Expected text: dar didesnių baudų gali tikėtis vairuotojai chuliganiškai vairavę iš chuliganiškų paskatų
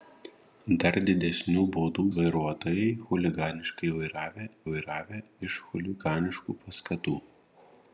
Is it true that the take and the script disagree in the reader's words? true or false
true